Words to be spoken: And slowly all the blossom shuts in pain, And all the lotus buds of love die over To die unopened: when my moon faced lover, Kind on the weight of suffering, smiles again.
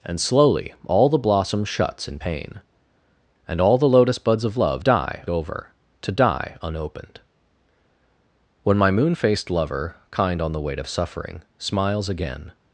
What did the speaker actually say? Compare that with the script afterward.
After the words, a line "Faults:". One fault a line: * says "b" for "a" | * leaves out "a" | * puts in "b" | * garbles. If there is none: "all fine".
And slowly all the blossom shuts in pain, And all the lotus buds of love die over To die unopened: when my moon faced lover, Kind on the weight of suffering, smiles again.
Faults:
all fine